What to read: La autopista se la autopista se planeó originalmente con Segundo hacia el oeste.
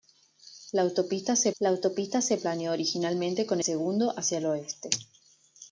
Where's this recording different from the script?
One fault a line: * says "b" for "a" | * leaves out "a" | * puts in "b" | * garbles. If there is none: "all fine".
all fine